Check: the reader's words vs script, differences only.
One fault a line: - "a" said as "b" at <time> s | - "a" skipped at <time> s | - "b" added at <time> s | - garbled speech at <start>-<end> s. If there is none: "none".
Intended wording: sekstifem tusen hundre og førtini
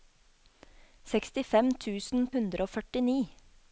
none